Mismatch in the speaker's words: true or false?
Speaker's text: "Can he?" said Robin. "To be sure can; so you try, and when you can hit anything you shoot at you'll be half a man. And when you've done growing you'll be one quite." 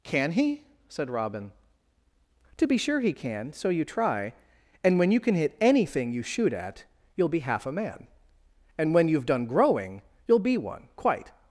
true